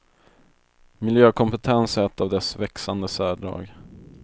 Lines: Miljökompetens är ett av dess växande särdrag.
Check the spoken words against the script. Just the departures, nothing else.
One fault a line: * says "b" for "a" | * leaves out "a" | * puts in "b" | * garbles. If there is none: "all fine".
all fine